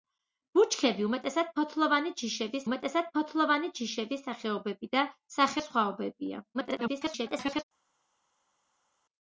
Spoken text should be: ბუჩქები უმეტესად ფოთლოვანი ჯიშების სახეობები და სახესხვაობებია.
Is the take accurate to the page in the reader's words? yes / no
no